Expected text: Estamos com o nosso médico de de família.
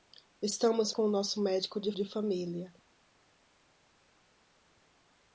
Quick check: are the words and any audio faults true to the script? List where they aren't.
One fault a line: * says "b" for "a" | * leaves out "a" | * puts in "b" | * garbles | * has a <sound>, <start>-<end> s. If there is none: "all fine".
all fine